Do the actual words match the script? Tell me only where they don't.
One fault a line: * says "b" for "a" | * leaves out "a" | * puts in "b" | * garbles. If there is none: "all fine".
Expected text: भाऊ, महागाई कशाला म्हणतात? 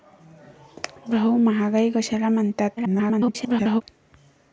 * garbles